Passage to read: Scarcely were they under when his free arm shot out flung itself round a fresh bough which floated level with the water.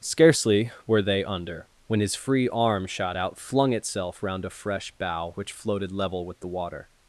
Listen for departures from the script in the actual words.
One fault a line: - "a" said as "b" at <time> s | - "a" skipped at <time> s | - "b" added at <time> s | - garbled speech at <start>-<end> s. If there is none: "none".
none